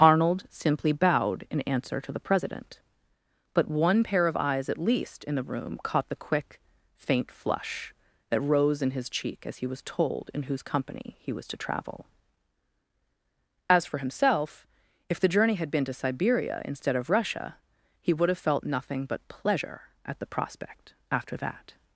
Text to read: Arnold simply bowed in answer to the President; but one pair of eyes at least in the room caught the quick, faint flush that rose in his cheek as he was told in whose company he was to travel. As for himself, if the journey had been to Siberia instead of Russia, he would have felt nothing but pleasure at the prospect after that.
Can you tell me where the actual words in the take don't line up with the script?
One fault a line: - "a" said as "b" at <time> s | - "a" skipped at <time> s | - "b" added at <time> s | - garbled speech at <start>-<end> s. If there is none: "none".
none